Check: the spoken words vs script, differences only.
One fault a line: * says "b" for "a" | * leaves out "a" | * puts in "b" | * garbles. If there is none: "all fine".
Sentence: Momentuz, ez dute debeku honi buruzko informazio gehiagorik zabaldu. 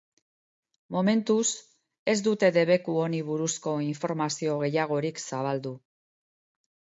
all fine